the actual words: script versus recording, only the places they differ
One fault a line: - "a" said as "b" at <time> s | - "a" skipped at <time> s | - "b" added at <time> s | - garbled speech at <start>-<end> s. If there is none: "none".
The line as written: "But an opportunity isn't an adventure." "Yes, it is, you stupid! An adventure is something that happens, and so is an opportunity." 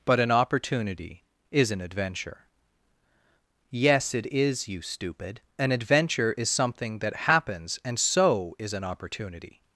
- "isn't" said as "is" at 1.5 s